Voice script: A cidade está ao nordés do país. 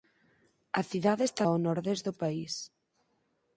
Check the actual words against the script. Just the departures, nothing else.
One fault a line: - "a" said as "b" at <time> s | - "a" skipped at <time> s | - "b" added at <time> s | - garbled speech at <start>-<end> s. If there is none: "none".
none